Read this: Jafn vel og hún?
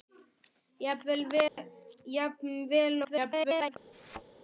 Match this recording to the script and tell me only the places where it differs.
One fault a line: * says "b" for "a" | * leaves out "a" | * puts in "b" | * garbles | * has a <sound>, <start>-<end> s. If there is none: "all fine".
* has a dropout, 1.5-1.6 s
* garbles
* has a thud, 3.9-4.2 s